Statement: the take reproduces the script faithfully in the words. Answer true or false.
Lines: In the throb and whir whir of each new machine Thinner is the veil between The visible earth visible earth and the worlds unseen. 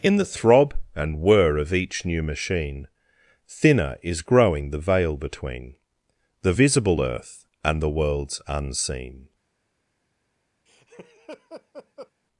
false